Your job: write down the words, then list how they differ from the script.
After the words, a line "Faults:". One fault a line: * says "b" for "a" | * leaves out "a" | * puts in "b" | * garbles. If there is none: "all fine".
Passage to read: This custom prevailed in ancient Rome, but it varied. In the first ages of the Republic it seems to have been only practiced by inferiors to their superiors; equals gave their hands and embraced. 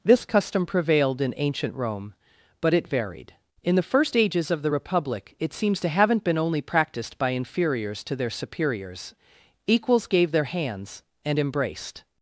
This custom prevailed in ancient Rome, but it varied. In the first ages of the Republic it seems to haven't been only practiced by inferiors to their superiors; equals gave their hands and embraced.
Faults:
* says "haven't" for "have"